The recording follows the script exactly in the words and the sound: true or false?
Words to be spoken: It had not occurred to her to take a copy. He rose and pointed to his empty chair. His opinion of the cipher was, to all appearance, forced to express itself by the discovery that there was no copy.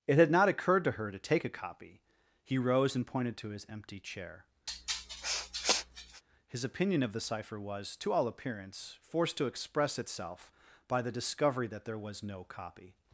false